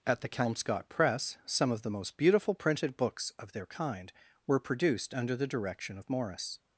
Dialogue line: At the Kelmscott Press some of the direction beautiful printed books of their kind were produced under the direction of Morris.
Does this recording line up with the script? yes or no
no